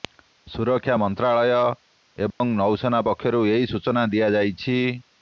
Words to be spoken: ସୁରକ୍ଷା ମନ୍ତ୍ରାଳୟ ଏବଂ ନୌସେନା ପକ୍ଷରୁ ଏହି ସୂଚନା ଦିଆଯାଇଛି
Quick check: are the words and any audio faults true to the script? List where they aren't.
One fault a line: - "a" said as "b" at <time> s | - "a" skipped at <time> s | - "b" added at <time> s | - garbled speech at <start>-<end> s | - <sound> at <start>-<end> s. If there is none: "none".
- dropout at 2.3-2.4 s